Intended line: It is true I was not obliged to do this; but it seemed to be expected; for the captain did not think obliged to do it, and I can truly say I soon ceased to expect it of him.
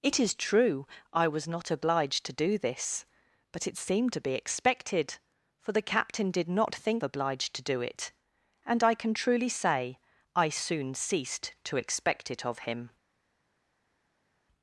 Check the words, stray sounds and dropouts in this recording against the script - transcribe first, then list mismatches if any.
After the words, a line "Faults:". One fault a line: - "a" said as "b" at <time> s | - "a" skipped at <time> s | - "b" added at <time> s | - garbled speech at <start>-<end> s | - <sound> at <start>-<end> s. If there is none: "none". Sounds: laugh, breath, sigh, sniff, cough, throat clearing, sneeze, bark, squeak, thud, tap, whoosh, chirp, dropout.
It is true I was not obliged to do this; but it seemed to be expected; for the captain did not think obliged to do it, and I can truly say I soon ceased to expect it of him.
Faults:
none